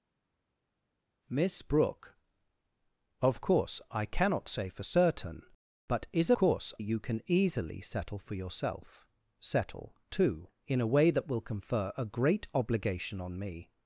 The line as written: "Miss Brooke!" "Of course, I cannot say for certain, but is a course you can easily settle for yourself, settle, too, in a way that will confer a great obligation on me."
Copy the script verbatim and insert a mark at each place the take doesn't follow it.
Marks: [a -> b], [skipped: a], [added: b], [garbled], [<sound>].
"Miss Brooke!" "Of course, I cannot say for certain, but is a course you can easily settle for yourself, settle, too, in a way that will confer a great obligation on me."